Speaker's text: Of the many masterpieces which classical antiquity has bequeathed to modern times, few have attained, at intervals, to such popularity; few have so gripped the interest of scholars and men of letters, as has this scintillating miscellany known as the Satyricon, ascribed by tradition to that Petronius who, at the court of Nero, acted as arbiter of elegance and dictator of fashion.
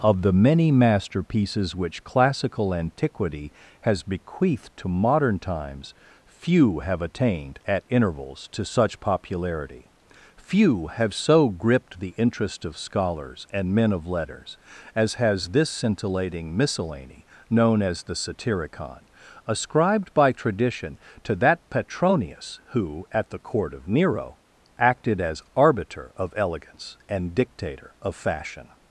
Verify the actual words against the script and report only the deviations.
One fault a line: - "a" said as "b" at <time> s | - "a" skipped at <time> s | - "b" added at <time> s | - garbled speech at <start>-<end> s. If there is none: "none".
none